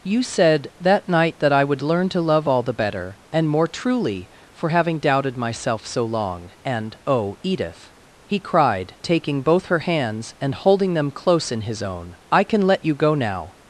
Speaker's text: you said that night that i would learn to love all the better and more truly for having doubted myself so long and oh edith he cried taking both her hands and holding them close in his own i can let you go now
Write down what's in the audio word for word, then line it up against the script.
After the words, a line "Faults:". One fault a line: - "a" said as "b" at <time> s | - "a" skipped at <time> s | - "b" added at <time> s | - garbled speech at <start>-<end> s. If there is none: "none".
you said that night that i would learn to love all the better and more truly for having doubted myself so long and oh edith he cried taking both her hands and holding them close in his own i can let you go now
Faults:
none